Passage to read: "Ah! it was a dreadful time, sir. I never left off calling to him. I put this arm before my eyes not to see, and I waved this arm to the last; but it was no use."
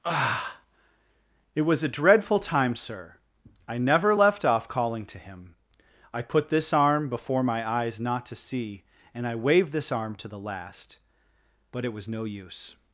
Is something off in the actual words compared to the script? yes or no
no